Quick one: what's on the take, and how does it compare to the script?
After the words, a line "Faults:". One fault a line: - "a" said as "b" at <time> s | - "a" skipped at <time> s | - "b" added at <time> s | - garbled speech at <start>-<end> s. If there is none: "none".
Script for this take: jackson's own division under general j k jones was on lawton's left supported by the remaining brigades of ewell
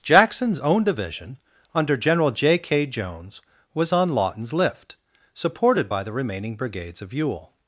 jackson's own division under general j k jones was on lawton's lift supported by the remaining brigades of ewell
Faults:
- "left" said as "lift" at 4.5 s